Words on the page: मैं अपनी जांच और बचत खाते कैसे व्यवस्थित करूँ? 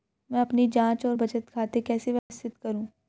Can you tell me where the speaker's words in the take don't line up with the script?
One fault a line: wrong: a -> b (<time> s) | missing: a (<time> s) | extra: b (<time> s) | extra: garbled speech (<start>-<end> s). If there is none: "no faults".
no faults